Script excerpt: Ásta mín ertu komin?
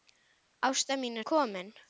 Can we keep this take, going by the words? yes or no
no